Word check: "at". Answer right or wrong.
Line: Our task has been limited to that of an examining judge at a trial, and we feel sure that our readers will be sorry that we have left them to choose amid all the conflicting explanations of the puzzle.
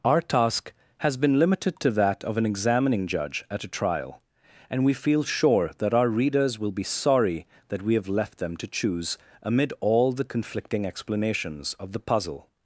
right